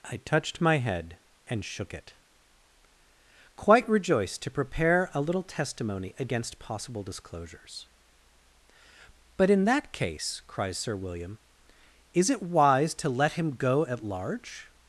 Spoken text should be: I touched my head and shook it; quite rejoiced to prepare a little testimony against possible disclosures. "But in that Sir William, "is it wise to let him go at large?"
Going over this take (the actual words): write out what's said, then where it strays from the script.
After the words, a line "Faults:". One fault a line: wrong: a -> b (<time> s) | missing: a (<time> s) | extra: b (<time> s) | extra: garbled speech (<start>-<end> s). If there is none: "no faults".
I touched my head and shook it; quite rejoiced to prepare a little testimony against possible disclosures. "But in that case," cries Sir William, "is it wise to let him go at large?"
Faults:
extra: case cries (9.9 s)